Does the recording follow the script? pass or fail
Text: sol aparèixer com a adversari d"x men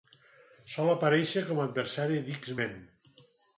pass